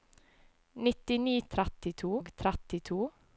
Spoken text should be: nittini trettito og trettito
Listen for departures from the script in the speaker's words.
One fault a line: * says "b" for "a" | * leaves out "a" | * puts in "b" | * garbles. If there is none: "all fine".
all fine